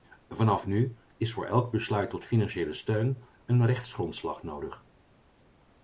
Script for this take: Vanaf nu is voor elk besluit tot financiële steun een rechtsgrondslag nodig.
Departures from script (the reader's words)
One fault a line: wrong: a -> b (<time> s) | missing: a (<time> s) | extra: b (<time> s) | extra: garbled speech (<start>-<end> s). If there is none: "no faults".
no faults